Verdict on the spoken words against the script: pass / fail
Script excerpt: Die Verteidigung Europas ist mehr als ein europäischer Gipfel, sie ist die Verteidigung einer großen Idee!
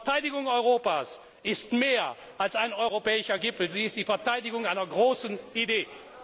pass